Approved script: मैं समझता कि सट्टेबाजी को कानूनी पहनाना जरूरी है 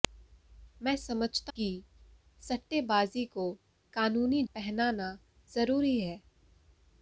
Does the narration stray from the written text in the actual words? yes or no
no